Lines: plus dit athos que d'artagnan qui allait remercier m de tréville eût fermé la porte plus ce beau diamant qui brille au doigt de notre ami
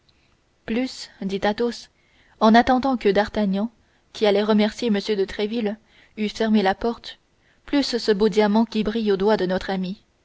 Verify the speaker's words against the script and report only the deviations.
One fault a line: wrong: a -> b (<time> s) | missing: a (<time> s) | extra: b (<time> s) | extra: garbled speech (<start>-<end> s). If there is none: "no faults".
extra: en attendant (2.4 s)